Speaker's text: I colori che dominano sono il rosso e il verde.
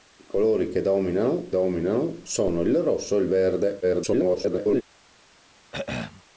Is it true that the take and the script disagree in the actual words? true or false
true